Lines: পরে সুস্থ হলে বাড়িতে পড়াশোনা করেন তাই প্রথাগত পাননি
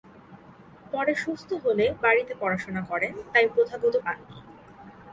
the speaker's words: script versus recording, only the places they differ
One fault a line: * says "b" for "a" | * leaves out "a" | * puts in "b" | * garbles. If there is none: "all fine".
all fine